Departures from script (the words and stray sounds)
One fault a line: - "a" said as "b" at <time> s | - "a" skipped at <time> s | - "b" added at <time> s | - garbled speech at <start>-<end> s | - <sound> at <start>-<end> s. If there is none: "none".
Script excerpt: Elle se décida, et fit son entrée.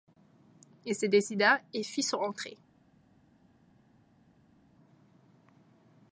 - "Elle" said as "Il" at 0.8 s